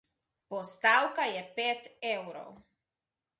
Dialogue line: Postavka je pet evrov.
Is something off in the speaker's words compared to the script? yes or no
no